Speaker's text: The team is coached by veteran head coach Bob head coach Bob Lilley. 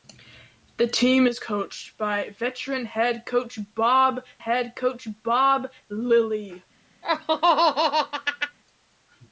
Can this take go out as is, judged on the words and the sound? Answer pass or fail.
fail